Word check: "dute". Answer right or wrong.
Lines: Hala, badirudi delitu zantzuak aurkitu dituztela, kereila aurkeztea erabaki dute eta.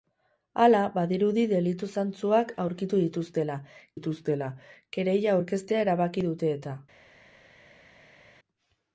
right